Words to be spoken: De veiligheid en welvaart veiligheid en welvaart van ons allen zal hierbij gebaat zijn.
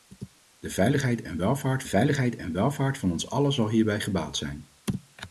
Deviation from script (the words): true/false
false